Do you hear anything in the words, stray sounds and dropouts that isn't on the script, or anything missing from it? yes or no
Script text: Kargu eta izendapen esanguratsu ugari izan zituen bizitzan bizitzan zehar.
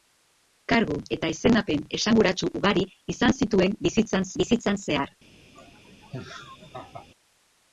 yes